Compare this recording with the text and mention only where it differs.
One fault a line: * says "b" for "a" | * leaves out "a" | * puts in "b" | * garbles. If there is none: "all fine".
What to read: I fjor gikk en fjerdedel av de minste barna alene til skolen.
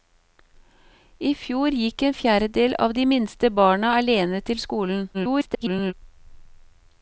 * garbles